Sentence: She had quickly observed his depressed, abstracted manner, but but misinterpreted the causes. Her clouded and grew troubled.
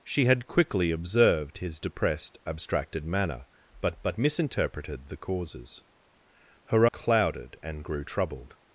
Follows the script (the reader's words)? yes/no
yes